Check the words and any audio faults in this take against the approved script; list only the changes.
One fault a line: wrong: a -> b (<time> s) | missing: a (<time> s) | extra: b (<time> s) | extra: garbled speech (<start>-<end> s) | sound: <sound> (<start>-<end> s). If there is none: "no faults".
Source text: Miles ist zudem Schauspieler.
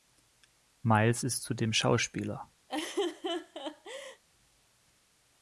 sound: laugh (2.7-4.2 s)